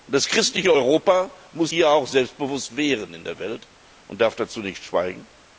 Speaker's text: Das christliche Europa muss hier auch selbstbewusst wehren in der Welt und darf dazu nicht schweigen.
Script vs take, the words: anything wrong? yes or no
no